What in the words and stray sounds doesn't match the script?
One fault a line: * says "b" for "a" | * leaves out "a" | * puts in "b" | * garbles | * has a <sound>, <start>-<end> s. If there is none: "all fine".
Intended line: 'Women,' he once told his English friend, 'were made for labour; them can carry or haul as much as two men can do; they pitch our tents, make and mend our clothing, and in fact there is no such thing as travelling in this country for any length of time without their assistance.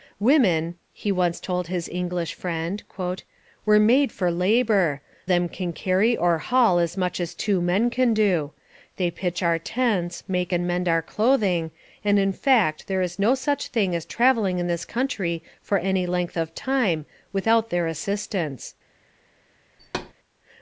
* has a thud, 19.8-20.1 s